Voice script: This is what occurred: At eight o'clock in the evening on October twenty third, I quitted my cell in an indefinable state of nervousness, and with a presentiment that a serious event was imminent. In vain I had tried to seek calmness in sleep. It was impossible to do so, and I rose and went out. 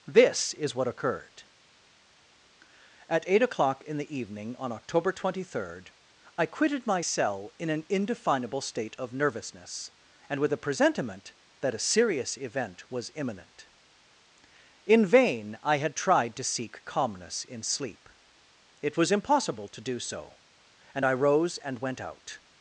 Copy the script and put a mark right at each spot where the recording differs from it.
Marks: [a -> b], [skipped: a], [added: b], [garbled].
This is what occurred: At eight o'clock in the evening on October twenty third, I quitted my cell in an indefinable state of nervousness, and with a presentiment that a serious event was imminent. In vain I had tried to seek calmness in sleep. It was impossible to do so, and I rose and went out.